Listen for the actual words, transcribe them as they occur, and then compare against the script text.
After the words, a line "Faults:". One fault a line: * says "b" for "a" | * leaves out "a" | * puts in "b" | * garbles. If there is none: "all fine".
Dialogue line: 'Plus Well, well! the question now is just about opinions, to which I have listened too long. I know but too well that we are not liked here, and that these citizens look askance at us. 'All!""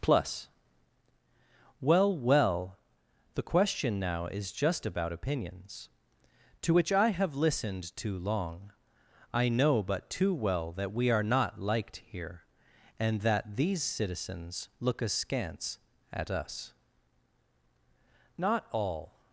'Plus Well, well! the question now is just about opinions, to which I have listened too long. I know but too well that we are not liked here, and that these citizens look askance at us. 'Not all!""
Faults:
* puts in "Not"